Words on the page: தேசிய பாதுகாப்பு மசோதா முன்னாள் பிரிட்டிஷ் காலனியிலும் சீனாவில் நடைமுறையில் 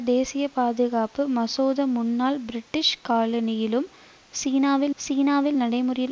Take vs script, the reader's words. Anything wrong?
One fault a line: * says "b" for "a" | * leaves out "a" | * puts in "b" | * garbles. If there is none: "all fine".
* puts in "சீனாவில்"